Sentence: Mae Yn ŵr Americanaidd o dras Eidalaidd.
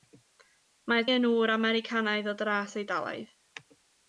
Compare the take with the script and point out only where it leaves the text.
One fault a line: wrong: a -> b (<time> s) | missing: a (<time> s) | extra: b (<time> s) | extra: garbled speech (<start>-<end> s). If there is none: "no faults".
no faults